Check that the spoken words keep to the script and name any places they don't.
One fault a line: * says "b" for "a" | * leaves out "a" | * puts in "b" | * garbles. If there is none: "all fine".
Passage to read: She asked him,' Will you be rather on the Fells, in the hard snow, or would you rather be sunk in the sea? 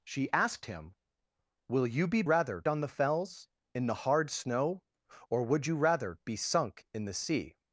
all fine